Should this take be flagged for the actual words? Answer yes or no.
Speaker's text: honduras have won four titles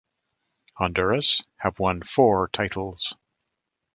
no